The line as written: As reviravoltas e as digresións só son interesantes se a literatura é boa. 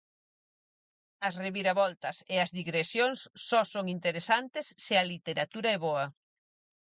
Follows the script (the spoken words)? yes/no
yes